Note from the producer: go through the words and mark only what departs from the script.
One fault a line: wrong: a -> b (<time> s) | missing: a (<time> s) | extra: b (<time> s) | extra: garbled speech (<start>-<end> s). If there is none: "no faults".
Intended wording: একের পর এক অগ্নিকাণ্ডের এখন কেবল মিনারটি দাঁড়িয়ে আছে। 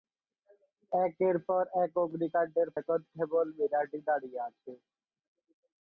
no faults